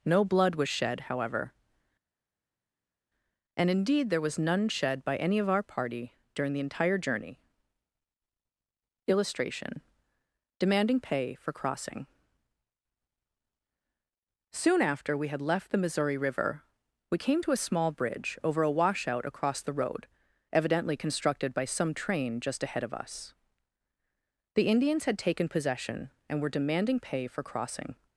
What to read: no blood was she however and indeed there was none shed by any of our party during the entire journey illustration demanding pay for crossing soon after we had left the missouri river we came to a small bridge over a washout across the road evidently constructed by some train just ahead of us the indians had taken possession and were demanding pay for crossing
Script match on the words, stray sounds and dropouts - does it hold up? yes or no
no